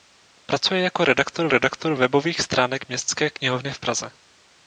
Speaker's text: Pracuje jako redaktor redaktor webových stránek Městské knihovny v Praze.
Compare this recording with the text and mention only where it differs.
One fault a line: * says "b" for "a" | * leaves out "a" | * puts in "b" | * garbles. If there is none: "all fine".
all fine